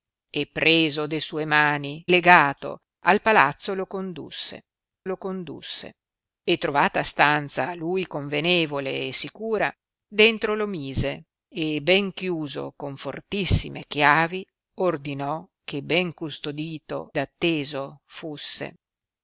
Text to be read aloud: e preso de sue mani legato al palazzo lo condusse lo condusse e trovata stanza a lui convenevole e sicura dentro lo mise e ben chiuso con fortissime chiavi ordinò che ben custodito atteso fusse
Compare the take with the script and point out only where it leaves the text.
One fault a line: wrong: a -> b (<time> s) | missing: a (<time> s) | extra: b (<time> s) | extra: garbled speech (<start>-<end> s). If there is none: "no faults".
no faults